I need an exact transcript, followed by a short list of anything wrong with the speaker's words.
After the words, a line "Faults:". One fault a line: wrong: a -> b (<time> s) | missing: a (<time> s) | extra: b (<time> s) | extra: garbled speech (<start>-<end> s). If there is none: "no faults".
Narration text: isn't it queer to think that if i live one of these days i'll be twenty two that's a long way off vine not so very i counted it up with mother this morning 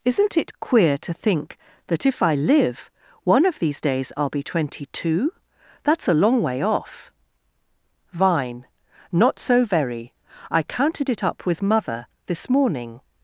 isn't it queer to think that if i live one of these days i'll be twenty two that's a long way off vine not so very i counted it up with mother this morning
Faults:
no faults